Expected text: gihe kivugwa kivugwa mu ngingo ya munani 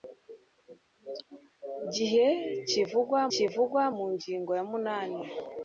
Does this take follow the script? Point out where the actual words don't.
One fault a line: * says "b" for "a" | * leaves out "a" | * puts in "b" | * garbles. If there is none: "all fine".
all fine